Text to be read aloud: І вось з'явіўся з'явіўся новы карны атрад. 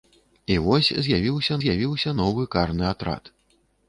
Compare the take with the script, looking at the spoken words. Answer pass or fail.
pass